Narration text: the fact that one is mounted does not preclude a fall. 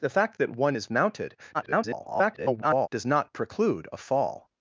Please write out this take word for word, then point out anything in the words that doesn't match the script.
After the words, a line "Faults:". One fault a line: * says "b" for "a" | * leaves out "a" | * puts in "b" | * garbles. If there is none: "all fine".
the fact that one is mounted [garbled] does not preclude a fall.
Faults:
* garbles